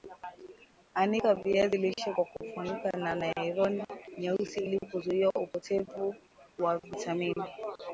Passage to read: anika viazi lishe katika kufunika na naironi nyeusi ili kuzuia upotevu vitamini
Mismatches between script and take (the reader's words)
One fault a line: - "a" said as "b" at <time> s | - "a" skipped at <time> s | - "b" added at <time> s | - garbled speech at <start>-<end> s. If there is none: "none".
- "katika" said as "kwa" at 2.1 s
- "wa" added at 6.6 s